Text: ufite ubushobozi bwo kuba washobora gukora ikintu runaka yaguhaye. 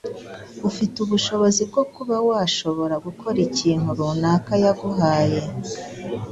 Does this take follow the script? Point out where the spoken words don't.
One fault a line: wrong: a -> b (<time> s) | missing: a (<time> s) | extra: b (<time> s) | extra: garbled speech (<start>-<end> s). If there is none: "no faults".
no faults